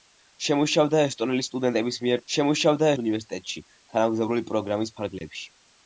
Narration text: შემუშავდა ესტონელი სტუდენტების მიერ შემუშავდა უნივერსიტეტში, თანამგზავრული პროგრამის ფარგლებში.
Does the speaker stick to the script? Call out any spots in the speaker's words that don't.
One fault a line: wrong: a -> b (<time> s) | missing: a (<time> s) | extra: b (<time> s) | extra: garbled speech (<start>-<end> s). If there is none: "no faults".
no faults